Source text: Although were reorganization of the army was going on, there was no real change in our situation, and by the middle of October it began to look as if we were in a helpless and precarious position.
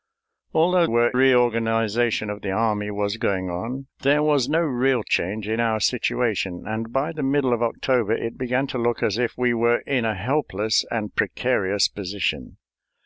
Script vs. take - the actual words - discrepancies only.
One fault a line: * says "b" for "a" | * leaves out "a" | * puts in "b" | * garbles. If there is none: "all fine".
all fine